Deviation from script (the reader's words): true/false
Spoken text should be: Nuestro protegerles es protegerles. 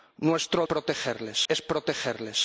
false